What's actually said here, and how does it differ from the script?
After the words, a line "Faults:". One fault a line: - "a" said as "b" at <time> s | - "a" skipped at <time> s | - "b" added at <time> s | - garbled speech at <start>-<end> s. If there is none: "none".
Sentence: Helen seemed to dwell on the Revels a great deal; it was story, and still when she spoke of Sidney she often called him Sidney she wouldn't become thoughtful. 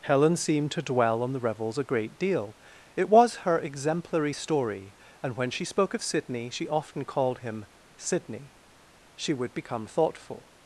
Helen seemed to dwell on the Revels a great deal; it was her exemplary story, and when she spoke of Sidney she often called him Sidney she would become thoughtful.
Faults:
- "her exemplary" added at 3.4 s
- "still" skipped at 5.3 s
- "wouldn't" said as "would" at 9.3 s